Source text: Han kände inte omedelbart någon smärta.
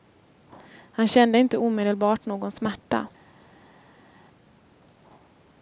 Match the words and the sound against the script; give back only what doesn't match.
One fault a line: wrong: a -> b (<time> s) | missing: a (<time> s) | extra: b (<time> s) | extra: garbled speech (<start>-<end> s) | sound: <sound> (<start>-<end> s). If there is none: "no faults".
no faults